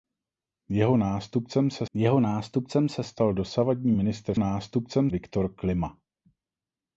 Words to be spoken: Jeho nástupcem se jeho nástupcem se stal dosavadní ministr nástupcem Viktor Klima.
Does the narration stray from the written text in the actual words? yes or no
no